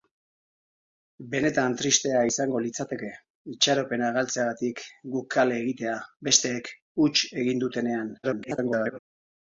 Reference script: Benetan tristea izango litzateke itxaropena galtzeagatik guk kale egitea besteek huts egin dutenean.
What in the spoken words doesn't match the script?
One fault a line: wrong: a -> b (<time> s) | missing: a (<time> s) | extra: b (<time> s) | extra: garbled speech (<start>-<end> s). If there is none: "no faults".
extra: garbled speech (8.2-9.0 s)